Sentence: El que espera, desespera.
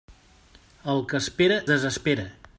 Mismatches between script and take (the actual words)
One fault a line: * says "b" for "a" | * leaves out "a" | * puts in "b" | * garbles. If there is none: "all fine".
all fine